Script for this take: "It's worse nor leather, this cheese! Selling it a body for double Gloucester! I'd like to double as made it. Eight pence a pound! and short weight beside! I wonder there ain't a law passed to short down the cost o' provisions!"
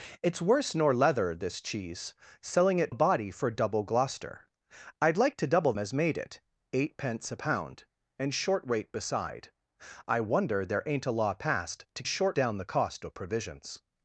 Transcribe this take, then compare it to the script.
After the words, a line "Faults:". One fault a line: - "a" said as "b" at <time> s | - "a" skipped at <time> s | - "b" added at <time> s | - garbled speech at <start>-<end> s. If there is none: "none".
"It's worse nor leather, this cheese! Selling it a body for double Gloucester! I'd like to double as made it. Eight pence a pound! and short weight beside! I wonder there ain't a law passed to short down the cost o' provisions!"
Faults:
none